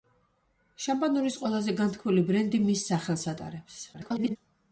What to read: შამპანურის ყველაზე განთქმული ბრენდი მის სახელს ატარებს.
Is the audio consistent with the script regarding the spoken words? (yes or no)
no